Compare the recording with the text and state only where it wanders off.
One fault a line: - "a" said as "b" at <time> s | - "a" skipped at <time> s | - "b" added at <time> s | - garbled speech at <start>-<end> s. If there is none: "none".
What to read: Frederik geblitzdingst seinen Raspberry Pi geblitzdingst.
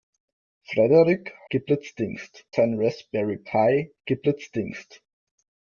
none